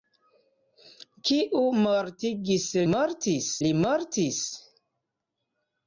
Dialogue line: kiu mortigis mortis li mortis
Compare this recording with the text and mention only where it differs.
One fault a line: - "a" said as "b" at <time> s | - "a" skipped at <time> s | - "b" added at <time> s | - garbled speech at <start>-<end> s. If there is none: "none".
none